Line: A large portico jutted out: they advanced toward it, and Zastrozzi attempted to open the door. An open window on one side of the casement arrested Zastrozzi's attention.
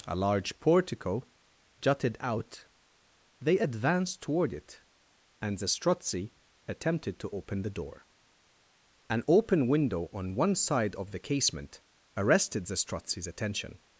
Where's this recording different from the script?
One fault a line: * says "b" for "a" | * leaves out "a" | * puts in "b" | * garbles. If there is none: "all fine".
all fine